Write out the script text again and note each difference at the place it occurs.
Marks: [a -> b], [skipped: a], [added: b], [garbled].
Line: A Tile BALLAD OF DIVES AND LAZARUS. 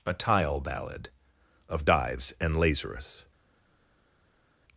A Tile BALLAD OF DIVES AND LAZARUS.